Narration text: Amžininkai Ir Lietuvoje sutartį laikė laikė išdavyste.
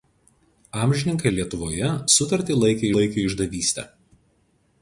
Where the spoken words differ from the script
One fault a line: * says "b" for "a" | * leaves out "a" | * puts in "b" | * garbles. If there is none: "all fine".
all fine